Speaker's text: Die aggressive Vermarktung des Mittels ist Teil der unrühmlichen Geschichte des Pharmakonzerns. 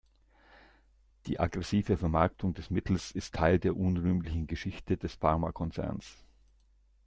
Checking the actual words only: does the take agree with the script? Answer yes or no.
yes